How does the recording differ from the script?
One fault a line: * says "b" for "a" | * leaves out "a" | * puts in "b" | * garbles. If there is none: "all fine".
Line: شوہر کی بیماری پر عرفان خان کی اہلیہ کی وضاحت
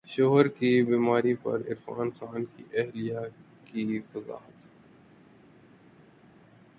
all fine